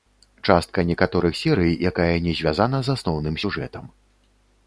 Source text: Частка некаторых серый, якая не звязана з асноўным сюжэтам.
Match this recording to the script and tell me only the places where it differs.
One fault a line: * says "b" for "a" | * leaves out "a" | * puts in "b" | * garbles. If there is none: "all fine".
all fine